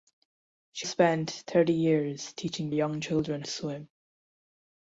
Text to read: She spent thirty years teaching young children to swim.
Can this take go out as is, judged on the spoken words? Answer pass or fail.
pass